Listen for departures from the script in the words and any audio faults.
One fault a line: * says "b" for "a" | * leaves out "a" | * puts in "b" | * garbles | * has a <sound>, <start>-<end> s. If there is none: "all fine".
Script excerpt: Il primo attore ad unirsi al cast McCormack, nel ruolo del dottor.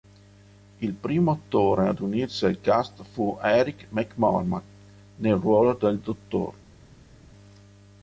* puts in "fu Eric"